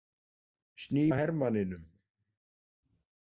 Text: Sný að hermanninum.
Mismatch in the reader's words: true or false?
false